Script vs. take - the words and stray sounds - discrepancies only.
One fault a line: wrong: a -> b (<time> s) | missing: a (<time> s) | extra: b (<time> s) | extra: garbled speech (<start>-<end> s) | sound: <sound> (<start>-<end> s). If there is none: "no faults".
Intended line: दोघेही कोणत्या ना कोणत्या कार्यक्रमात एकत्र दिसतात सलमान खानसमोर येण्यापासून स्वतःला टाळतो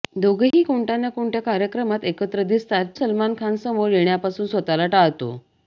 sound: dropout (0.5-0.5 s)